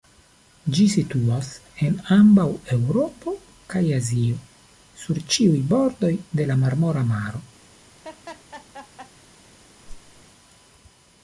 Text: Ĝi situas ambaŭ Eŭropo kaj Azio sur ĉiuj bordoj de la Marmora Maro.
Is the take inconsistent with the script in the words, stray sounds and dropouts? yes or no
yes